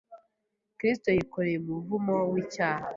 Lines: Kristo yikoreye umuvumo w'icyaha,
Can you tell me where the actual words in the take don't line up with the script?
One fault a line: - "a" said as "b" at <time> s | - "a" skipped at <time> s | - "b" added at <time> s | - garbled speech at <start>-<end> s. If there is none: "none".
none